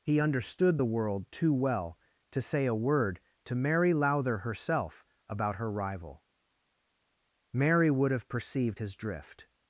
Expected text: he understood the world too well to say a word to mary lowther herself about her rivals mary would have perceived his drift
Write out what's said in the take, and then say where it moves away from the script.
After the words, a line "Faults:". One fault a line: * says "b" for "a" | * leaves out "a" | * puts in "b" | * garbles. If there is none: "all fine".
he understood the world too well to say a word to mary lowther herself about her rival mary would have perceived his drift
Faults:
* says "rival" for "rivals"